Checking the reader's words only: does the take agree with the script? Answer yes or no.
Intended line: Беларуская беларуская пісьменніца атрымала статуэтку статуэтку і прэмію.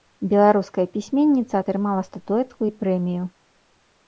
no